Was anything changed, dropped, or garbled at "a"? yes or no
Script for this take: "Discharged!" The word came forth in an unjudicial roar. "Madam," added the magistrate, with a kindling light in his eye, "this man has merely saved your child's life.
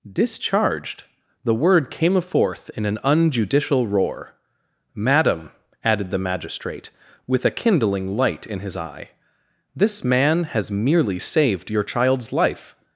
no